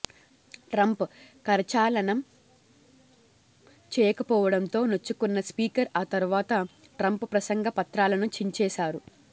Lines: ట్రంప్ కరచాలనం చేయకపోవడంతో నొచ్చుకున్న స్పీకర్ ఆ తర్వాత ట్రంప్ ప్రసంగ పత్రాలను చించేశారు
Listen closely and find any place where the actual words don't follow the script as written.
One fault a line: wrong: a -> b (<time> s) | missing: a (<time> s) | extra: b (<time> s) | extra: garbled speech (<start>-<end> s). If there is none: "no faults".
no faults